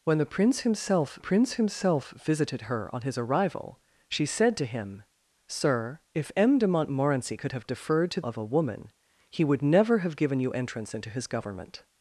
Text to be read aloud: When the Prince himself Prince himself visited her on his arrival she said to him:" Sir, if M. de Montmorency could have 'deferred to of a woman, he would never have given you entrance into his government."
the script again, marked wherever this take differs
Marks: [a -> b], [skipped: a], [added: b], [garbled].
When the Prince himself Prince himself visited her on his arrival she said to him:" Sir, if M. de Montmorency could have 'deferred to of a woman, he would never have given you entrance into his government."